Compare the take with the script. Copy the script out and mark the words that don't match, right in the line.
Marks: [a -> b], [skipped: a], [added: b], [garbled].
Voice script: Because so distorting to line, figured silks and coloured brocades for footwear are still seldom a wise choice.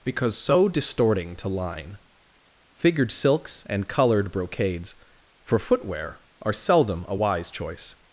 Because so distorting to line, figured silks and coloured brocades for footwear are [skipped: still] seldom a wise choice.